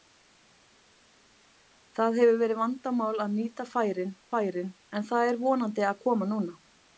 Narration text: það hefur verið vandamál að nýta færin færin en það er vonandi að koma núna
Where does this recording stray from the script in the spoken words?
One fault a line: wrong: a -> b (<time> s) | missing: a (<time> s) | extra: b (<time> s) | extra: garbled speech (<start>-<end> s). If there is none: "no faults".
no faults